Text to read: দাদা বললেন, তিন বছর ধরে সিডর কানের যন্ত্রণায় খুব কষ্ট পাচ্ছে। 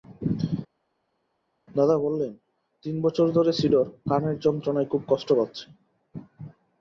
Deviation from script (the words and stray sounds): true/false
false